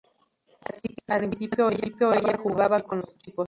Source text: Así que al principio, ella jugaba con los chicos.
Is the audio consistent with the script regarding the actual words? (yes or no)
yes